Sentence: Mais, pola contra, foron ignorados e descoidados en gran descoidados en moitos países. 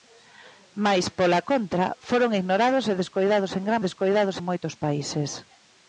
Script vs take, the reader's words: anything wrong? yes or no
no